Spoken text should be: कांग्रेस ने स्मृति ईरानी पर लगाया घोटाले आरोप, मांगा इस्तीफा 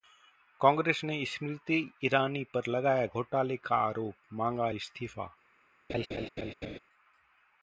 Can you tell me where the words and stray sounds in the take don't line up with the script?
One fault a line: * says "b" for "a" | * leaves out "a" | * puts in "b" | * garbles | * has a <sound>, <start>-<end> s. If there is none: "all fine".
* puts in "का"
* has a laugh, 5.9-6.8 s